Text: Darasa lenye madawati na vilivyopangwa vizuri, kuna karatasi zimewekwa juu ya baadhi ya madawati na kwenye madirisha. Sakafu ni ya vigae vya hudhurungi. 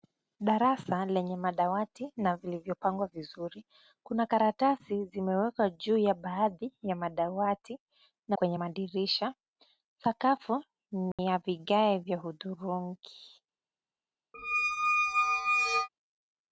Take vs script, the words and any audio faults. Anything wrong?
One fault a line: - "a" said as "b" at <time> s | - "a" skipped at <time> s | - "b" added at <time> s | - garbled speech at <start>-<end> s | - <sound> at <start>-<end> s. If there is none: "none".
- dropout at 11.1-11.2 s
- squeak at 14.3-15.9 s